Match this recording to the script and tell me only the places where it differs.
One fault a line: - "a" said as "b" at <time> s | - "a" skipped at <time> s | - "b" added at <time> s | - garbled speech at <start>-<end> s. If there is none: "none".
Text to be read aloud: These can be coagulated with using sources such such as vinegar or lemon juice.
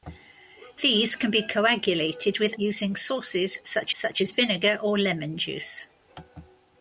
none